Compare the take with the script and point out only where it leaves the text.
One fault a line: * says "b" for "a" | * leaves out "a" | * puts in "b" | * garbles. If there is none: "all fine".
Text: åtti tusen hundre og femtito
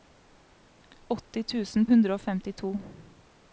all fine